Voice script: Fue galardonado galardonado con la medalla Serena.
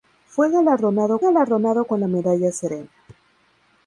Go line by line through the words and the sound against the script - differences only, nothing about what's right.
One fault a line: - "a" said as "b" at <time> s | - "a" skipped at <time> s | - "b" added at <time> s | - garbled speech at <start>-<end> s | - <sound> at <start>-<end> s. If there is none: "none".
none